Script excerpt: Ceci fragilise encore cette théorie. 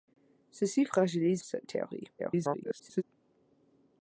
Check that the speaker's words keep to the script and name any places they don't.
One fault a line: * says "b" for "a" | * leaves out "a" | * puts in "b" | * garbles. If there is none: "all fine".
* leaves out "encore"
* garbles